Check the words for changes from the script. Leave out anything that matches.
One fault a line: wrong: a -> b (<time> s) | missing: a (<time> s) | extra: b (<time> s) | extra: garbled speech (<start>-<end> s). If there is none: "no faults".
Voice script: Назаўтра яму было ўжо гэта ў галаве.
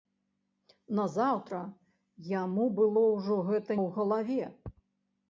no faults